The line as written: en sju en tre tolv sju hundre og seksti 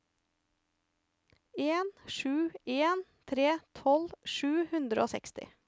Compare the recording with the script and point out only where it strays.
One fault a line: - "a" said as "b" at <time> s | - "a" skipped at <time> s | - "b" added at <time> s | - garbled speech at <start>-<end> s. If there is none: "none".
none